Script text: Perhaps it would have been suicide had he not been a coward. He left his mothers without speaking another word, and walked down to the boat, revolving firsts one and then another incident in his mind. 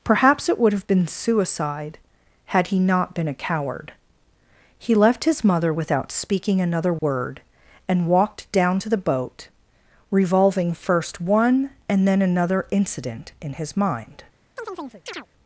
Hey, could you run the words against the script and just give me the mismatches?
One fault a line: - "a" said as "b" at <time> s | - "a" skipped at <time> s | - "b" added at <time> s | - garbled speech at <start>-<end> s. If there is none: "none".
- "mothers" said as "mother" at 5.4 s
- "firsts" said as "first" at 10.7 s